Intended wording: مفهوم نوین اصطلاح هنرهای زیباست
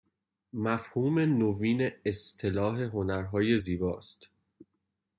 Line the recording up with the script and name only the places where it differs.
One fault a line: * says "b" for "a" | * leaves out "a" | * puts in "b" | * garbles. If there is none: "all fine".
all fine